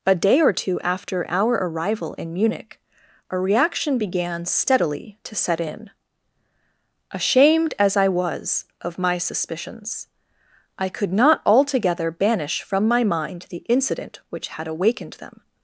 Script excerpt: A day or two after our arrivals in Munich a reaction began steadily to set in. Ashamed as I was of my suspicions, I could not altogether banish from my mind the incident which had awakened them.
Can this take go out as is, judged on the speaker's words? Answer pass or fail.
fail